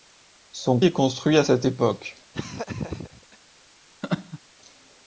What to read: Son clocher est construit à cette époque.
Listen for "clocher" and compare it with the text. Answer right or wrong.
wrong